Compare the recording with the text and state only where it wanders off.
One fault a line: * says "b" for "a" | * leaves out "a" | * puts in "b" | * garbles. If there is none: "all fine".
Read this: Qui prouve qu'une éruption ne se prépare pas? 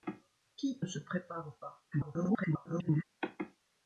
* leaves out "prouve qu'une éruption"
* garbles